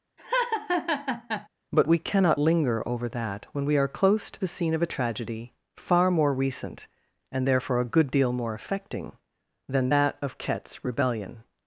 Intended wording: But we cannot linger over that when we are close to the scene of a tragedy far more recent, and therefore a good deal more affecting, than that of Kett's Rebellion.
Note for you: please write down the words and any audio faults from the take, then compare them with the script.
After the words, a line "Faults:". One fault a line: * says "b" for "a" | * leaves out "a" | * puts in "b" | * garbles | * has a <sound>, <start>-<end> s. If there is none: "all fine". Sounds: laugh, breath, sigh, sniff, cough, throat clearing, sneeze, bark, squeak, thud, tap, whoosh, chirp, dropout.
But we cannot linger over that when we are close to the scene of a tragedy far more recent, and therefore a good deal more affecting, than that of Kett's Rebellion.
Faults:
* has a laugh, 0.2-1.5 s